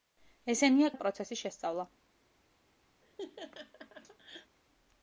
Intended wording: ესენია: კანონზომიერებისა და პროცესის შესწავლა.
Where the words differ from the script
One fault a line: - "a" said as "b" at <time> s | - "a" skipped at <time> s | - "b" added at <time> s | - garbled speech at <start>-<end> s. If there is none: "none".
- "კანონზომიერებისა" skipped at 0.9 s